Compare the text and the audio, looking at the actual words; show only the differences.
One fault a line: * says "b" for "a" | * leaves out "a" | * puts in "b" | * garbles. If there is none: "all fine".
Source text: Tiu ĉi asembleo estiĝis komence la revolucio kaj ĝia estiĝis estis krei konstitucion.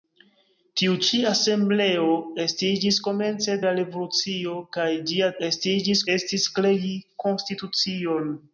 all fine